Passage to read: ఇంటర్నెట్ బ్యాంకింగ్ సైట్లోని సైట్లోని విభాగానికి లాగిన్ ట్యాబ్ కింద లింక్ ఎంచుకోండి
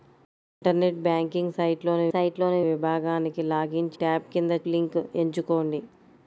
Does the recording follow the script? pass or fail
pass